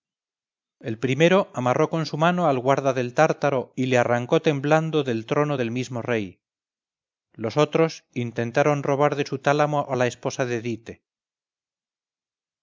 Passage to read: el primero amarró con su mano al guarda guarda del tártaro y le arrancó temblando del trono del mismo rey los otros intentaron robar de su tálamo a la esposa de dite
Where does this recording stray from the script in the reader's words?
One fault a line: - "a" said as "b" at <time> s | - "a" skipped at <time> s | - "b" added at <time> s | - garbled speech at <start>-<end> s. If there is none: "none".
- "guarda" skipped at 2.9 s